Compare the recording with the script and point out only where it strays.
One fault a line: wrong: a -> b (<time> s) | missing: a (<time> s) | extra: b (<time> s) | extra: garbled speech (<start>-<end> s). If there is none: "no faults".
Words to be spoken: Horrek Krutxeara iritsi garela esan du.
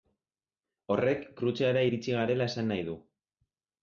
extra: nahi (2.7 s)